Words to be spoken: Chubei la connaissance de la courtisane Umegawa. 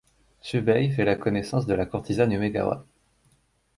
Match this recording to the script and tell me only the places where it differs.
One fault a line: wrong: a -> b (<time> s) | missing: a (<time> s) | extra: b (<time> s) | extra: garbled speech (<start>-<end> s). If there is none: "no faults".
extra: fait (0.9 s)